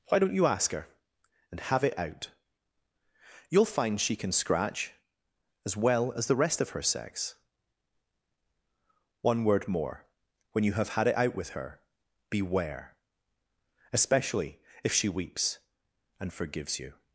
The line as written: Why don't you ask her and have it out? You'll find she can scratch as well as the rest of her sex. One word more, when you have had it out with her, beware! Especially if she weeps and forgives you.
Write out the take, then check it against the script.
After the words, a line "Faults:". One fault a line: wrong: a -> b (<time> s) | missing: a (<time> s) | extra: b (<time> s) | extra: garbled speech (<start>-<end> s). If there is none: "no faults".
Why don't you ask her and have it out? You'll find she can scratch as well as the rest of her sex. One word more, when you have had it out with her, beware! Especially if she weeps and forgives you.
Faults:
no faults